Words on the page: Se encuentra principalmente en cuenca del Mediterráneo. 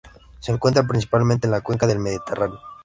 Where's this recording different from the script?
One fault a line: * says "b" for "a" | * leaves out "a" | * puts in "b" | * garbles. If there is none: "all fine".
* puts in "la"